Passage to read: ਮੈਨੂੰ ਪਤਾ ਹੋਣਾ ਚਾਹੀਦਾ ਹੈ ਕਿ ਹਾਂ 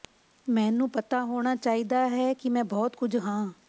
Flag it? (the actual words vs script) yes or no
yes